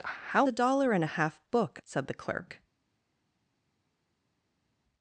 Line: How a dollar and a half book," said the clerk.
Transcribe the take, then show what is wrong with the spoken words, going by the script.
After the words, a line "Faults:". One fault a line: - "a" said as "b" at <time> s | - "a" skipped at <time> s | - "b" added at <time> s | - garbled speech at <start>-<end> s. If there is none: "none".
How a dollar and a half book," said the clerk.
Faults:
none